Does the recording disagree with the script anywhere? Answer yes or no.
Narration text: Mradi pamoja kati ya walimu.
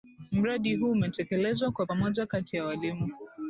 yes